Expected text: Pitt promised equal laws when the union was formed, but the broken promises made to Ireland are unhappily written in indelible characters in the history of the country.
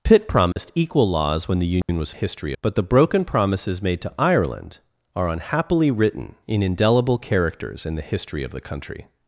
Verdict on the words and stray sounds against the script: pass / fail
fail